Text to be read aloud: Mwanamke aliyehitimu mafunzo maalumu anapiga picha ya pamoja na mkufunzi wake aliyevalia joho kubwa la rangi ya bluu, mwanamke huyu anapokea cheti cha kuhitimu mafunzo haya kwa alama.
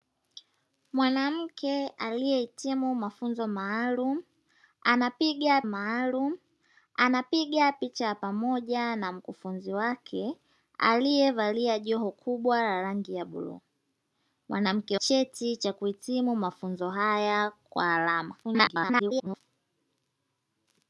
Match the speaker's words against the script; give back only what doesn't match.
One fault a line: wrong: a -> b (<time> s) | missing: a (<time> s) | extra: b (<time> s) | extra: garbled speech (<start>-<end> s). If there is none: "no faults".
extra: maalumu anapiga (5.6 s)
missing: huyu anapokea (15.0 s)
extra: garbled speech (18.4-19.4 s)